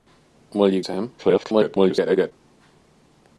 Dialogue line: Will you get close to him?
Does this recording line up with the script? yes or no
no